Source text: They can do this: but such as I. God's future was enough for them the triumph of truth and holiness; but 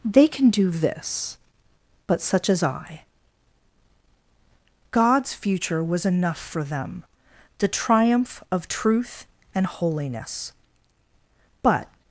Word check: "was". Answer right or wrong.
right